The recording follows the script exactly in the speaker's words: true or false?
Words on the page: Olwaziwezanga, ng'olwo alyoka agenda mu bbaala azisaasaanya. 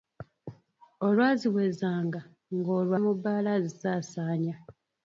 false